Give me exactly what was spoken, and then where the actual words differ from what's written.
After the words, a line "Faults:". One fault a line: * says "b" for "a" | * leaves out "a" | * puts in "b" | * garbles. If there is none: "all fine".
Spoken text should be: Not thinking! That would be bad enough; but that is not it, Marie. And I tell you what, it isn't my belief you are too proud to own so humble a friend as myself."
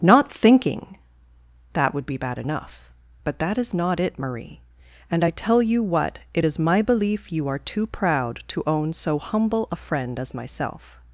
Not thinking! That would be bad enough; but that is not it, Marie. And I tell you what, it is my belief you are too proud to own so humble a friend as myself."
Faults:
* says "is" for "isn't"